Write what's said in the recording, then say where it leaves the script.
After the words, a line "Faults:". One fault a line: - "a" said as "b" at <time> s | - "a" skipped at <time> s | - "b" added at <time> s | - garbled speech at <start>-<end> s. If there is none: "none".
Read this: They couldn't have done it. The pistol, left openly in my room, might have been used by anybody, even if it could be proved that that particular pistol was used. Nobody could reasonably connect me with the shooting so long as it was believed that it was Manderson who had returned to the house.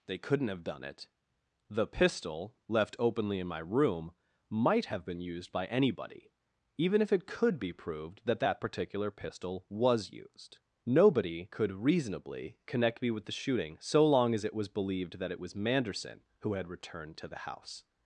They couldn't have done it. The pistol, left openly in my room, might have been used by anybody, even if it could be proved that that particular pistol was used. Nobody could reasonably connect me with the shooting so long as it was believed that it was Manderson who had returned to the house.
Faults:
none